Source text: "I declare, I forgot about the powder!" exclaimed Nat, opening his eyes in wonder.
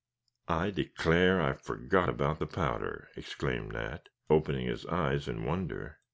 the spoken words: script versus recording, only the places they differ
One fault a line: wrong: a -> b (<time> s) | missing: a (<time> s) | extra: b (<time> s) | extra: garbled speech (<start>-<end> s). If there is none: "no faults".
no faults